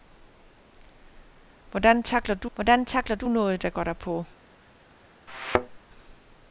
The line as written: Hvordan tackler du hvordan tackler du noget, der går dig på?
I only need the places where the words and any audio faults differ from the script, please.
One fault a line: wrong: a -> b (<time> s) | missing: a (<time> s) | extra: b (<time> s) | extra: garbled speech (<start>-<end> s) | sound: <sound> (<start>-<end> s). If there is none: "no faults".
sound: thud (5.3-5.8 s)